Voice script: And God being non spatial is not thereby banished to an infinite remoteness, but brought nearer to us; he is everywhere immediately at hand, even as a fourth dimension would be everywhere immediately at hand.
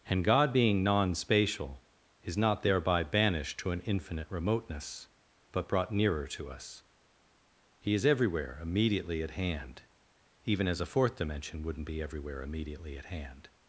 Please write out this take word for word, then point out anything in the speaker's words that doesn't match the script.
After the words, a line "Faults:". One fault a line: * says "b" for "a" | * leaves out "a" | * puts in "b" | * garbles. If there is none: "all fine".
And God being non spatial is not thereby banished to an infinite remoteness, but brought nearer to us; he is everywhere immediately at hand, even as a fourth dimension wouldn't be everywhere immediately at hand.
Faults:
* says "wouldn't" for "would"